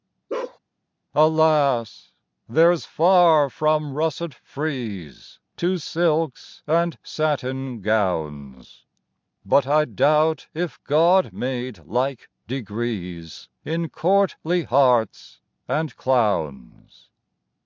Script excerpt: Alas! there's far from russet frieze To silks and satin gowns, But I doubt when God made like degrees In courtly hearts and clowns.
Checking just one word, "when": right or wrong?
wrong